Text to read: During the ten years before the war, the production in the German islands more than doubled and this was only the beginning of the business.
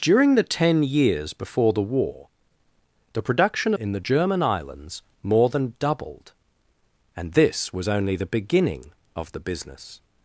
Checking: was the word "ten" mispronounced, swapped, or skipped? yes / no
no